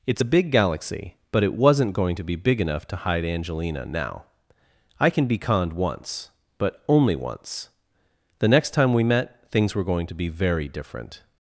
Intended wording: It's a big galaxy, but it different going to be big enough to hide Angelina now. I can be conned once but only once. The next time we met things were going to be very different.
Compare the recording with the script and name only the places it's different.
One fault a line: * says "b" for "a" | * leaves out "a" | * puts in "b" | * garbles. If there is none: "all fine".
* says "wasn't" for "different"